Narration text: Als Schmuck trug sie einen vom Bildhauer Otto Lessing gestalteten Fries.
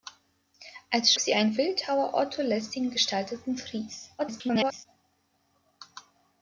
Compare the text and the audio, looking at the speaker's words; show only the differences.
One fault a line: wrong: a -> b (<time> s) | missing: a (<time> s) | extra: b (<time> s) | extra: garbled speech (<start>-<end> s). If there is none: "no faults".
missing: Schmuck trug (1.1 s)
missing: vom (1.5 s)
extra: garbled speech (4.2-4.9 s)